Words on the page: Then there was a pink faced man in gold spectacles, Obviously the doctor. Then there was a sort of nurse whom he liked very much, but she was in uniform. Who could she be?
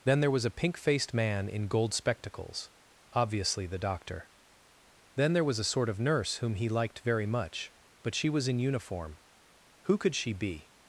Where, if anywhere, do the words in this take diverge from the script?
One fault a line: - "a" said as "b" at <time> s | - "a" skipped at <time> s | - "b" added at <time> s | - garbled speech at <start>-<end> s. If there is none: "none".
none